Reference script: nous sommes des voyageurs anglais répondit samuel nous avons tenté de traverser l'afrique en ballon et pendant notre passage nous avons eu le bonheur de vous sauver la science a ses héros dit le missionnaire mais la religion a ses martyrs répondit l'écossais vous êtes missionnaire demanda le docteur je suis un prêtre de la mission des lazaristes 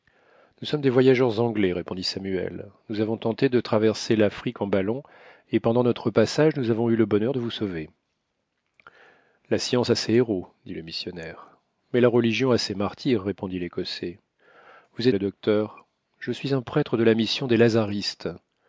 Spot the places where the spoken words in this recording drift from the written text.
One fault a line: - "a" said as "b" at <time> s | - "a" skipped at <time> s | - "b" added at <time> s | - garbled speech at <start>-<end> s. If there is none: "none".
- "êtes missionnaire demanda" skipped at 15.1 s